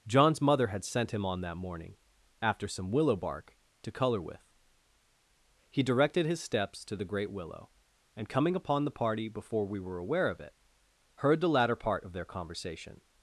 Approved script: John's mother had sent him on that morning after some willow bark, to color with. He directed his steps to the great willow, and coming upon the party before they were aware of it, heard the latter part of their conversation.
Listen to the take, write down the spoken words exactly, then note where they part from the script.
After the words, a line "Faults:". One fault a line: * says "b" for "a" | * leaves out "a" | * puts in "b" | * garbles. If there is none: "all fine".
John's mother had sent him on that morning after some willow bark, to color with. He directed his steps to the great willow, and coming upon the party before we were aware of it, heard the latter part of their conversation.
Faults:
* says "we" for "they"